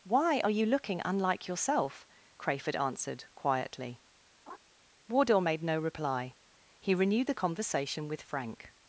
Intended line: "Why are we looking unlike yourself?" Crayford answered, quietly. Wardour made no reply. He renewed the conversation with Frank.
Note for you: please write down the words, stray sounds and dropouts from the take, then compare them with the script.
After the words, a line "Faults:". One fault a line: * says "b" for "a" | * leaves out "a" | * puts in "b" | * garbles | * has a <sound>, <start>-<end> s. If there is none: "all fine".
"Why are you looking unlike yourself?" Crayford answered, quietly. Wardour made no reply. He renewed the conversation with Frank.
Faults:
* says "you" for "we"
* has a laugh, 4.5-4.6 s